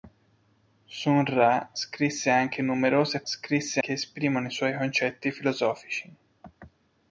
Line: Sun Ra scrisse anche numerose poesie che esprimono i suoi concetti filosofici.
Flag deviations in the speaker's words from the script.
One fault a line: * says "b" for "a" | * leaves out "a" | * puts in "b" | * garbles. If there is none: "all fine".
* says "scrisse" for "poesie"